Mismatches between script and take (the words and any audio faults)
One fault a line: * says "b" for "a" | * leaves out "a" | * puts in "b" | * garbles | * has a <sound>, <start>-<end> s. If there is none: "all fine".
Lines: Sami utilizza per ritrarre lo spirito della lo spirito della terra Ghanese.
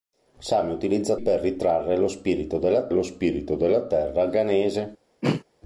* has a throat clearing, 5.2-5.4 s